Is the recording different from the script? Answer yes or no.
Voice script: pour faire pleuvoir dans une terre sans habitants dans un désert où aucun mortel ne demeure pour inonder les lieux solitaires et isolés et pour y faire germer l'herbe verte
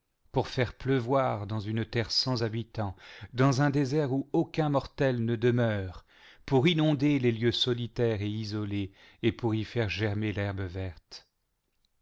no